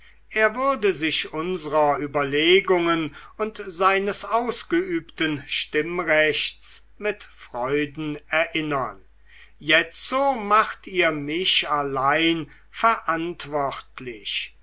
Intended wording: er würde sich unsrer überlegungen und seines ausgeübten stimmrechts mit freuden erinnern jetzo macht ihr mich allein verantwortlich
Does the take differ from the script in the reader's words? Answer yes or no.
no